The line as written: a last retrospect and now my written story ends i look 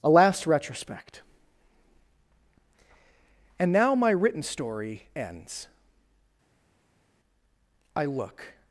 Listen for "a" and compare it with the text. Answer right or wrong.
right